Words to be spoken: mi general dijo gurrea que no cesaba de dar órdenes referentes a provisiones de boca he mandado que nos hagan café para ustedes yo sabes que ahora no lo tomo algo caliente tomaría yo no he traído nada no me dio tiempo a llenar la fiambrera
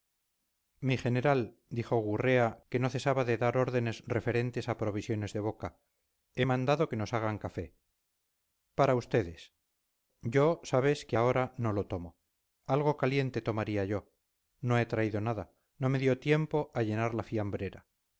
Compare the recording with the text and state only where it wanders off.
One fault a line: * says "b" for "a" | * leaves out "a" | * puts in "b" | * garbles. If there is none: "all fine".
all fine